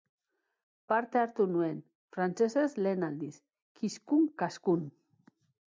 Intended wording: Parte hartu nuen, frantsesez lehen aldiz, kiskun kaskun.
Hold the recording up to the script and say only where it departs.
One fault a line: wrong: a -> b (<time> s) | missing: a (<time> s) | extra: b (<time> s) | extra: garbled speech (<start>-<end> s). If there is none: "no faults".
no faults